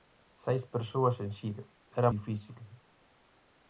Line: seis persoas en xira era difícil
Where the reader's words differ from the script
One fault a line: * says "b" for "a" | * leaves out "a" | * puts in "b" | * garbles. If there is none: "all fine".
all fine